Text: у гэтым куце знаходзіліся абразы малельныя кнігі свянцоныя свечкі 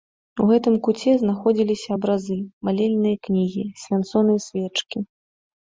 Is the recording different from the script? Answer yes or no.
no